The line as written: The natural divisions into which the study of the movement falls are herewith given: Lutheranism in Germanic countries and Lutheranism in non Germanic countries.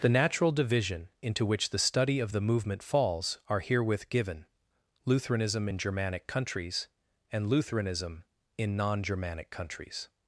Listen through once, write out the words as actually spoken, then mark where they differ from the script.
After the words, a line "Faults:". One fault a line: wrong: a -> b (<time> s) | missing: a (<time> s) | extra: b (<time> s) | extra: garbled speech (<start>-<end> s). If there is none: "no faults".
The natural division into which the study of the movement falls are herewith given: Lutheranism in Germanic countries and Lutheranism in non Germanic countries.
Faults:
wrong: divisions -> division (0.5 s)